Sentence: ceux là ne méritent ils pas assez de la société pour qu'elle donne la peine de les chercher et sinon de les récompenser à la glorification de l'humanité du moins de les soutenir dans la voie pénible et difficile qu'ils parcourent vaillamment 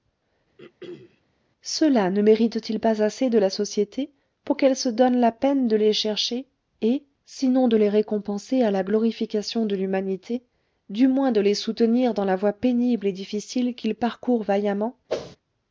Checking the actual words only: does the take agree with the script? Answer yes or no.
no